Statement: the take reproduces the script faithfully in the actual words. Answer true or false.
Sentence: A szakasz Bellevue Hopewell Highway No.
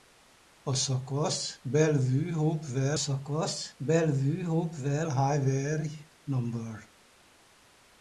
false